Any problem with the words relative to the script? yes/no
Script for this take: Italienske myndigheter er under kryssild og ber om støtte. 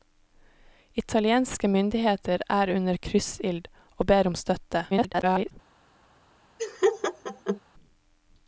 yes